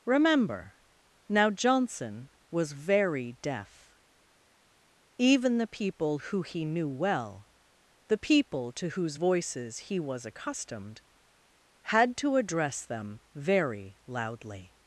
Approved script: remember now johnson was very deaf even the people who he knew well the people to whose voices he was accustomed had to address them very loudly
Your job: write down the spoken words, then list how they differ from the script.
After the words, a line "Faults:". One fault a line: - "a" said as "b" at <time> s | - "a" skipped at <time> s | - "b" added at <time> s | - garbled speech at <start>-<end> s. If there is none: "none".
remember now johnson was very deaf even the people who he knew well the people to whose voices he was accustomed had to address them very loudly
Faults:
none